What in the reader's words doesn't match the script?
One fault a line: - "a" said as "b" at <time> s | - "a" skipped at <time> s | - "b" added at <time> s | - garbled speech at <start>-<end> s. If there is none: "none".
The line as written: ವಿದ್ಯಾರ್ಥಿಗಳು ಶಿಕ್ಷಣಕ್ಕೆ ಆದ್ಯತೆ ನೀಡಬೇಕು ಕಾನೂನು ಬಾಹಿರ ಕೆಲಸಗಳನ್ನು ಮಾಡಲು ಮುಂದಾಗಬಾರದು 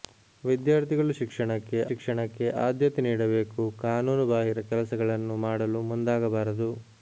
- "ಶಿಕ್ಷಣಕ್ಕೆ" added at 1.9 s